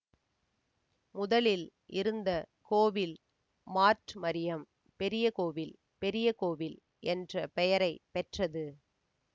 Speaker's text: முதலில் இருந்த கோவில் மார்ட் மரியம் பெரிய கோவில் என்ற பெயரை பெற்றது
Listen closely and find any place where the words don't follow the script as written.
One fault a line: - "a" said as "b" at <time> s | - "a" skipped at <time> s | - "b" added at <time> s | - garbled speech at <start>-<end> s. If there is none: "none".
- "பெரிய கோவில்" added at 6.0 s